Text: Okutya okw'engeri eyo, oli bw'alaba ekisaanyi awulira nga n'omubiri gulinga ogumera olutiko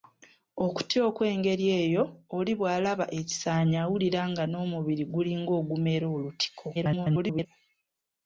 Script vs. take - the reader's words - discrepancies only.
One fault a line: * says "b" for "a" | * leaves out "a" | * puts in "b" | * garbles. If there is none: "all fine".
* garbles